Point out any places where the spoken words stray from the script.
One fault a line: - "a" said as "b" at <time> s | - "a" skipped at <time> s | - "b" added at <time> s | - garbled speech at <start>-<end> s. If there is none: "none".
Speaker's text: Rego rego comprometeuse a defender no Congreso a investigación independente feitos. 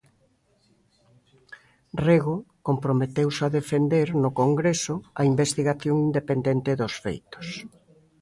- "rego" skipped at 2.4 s
- "dos" added at 6.8 s